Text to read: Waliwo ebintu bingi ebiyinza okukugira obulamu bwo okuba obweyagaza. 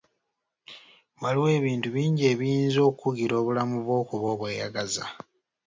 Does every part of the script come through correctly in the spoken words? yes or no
yes